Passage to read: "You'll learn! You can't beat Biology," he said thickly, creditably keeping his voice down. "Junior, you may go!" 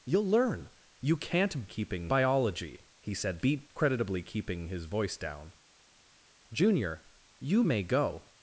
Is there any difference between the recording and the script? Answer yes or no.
yes